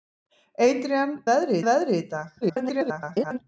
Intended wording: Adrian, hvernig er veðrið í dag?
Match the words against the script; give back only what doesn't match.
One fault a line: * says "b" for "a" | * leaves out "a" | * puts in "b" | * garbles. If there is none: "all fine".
* says "veðrið" for "hvernig"
* garbles